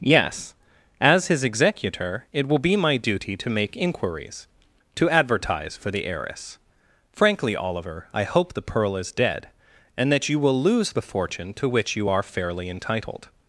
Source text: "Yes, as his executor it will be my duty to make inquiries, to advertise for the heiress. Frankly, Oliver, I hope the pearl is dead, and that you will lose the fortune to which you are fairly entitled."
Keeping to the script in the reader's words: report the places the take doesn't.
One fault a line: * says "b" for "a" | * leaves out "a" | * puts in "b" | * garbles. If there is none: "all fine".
all fine